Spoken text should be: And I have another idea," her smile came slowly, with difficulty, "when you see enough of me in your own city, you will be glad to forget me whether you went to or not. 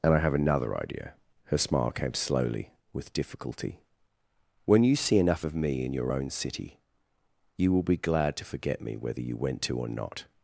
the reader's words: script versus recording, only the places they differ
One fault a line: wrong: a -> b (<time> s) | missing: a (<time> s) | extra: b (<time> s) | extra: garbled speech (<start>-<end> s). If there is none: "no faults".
no faults